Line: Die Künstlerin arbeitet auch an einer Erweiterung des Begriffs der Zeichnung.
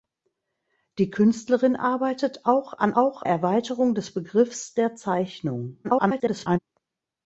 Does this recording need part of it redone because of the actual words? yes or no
yes